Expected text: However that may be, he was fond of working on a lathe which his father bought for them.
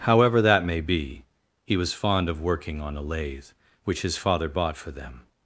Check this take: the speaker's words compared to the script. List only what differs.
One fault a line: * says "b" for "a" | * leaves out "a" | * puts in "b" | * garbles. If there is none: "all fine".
all fine